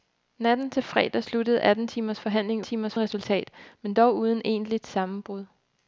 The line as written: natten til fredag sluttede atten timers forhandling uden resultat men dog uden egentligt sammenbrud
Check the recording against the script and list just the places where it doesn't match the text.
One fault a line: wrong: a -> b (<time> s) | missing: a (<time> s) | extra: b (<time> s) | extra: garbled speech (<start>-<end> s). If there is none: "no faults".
wrong: uden -> timers (2.6 s)